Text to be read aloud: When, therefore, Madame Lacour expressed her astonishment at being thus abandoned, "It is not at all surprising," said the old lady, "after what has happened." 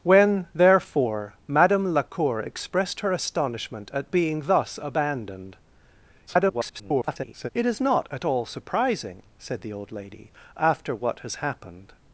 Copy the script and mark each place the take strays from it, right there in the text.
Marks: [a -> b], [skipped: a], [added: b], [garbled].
When, therefore, Madame Lacour expressed her astonishment at being thus abandoned, [garbled] "It is not at all surprising," said the old lady, "after what has happened."